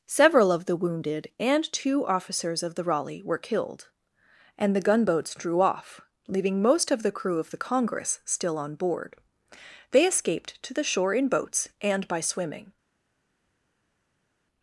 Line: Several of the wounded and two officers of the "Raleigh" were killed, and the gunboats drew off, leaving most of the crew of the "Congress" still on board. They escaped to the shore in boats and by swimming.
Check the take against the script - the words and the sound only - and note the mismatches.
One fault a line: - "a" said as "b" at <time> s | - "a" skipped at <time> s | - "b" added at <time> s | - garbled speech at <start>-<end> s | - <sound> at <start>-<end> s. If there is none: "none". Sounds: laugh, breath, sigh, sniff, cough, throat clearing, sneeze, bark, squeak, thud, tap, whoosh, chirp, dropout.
none